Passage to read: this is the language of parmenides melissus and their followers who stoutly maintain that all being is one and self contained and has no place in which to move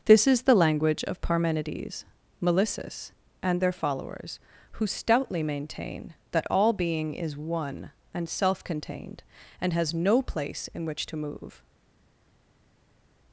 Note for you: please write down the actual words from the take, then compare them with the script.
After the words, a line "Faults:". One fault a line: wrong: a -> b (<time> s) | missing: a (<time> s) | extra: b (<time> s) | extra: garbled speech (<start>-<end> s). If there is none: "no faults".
this is the language of parmenides melissus and their followers who stoutly maintain that all being is one and self contained and has no place in which to move
Faults:
no faults